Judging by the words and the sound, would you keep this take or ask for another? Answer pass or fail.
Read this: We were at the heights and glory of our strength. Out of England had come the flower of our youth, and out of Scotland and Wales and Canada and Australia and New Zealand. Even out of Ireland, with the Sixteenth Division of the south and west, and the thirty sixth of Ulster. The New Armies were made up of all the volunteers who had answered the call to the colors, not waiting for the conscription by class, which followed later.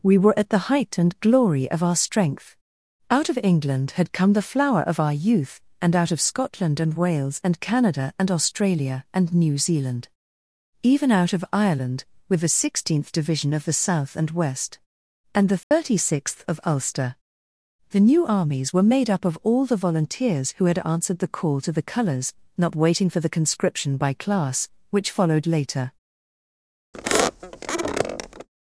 fail